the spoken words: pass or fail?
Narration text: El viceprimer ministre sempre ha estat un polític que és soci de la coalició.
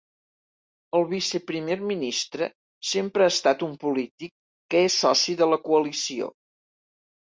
pass